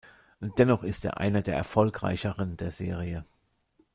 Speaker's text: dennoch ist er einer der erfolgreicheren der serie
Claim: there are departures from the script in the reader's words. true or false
false